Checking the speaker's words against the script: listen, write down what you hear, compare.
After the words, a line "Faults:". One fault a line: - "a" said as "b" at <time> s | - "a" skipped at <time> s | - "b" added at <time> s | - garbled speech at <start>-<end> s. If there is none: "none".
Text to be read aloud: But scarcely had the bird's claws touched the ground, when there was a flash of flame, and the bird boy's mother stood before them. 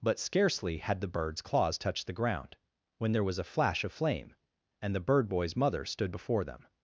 But scarcely had the bird's claws touched the ground, when there was a flash of flame, and the bird boy's mother stood before them.
Faults:
none